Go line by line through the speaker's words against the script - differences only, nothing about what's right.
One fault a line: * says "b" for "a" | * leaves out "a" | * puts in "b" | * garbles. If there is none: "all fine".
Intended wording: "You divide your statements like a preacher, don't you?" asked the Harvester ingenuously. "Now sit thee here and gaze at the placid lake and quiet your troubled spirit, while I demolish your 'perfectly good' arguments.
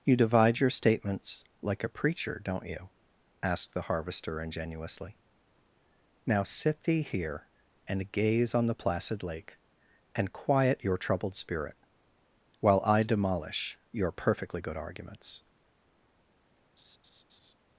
* says "on" for "at"